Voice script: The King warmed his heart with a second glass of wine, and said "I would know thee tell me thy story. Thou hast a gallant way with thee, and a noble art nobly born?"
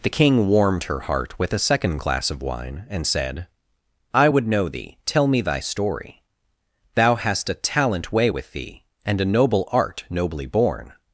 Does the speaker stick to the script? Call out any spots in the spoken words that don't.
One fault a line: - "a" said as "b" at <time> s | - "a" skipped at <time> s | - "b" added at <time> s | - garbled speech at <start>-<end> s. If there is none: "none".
- "his" said as "her" at 0.8 s
- "gallant" said as "talent" at 7.5 s